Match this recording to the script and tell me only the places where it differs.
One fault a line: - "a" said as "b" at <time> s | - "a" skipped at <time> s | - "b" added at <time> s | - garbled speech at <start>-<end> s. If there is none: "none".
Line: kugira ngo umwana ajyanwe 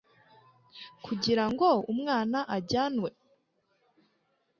none